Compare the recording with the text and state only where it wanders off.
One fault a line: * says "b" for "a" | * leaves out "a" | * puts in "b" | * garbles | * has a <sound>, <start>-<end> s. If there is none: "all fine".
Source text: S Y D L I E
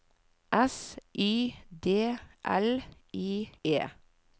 all fine